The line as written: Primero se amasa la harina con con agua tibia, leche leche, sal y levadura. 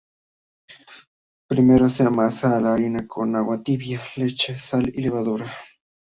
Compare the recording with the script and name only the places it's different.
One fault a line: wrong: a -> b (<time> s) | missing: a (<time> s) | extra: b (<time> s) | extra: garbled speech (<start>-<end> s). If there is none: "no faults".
missing: con (3.4 s)
missing: leche (4.6 s)